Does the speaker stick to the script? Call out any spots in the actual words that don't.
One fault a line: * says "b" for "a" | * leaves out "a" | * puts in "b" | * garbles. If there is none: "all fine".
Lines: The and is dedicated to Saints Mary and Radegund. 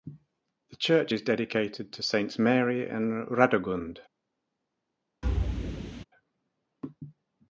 * says "church" for "and"